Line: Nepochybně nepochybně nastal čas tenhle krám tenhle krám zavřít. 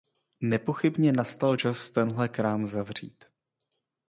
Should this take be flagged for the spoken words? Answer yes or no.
yes